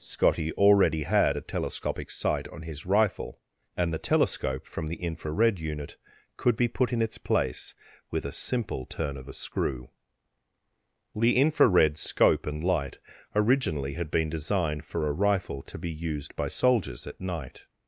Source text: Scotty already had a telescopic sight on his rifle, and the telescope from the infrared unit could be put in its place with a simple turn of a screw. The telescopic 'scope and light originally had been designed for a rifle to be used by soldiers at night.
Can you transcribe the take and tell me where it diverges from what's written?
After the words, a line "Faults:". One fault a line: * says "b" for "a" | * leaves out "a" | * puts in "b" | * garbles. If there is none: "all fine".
Scotty already had a telescopic sight on his rifle, and the telescope from the infrared unit could be put in its place with a simple turn of a screw. The infrared 'scope and light originally had been designed for a rifle to be used by soldiers at night.
Faults:
* says "infrared" for "telescopic"